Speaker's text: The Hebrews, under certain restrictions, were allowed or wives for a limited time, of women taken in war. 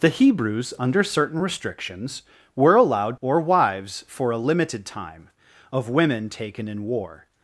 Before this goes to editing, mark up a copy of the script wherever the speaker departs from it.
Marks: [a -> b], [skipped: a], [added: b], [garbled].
The Hebrews, under certain restrictions, were allowed or wives for a limited time, of women taken in war.